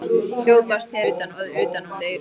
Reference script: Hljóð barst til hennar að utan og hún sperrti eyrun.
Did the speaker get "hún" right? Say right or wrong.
wrong